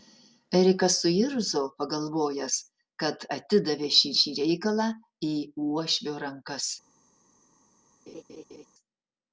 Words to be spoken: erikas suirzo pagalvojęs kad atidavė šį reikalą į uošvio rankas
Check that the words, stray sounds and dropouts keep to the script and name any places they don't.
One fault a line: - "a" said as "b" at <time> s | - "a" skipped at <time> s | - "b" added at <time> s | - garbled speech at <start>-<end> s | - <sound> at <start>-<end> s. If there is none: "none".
- "šį" added at 4.2 s
- laugh at 8.1-8.7 s